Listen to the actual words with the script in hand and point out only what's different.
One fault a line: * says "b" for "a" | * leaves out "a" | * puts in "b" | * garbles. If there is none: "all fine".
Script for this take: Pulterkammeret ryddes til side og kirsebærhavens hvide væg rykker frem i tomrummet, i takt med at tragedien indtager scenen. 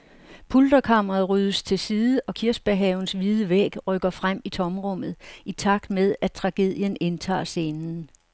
all fine